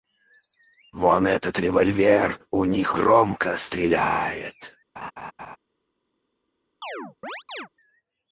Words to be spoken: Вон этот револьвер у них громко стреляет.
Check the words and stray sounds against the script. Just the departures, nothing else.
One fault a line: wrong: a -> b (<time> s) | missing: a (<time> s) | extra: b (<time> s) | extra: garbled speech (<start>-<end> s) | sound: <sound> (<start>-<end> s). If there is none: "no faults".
sound: laugh (5.0-5.6 s)
sound: chirp (6.8-7.7 s)